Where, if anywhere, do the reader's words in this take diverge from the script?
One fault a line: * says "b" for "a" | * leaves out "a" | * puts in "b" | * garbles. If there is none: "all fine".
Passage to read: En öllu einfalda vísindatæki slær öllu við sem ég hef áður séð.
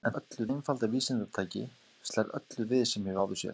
all fine